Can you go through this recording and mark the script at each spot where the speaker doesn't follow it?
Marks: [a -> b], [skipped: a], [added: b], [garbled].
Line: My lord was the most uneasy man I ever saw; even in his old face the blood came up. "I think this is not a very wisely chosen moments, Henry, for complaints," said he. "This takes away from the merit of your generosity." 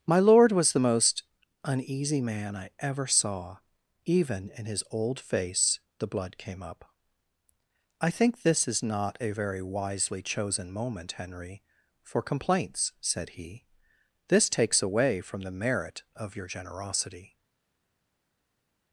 My lord was the most uneasy man I ever saw; even in his old face the blood came up. "I think this is not a very wisely chosen [moments, -> moment] Henry, for complaints," said he. "This takes away from the merit of your generosity."